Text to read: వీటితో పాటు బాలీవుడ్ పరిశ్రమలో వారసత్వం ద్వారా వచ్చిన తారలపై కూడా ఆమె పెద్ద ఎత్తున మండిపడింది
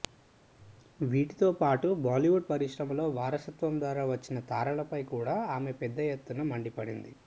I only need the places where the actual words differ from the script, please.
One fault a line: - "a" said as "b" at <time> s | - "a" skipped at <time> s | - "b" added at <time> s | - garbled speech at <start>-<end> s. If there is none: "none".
none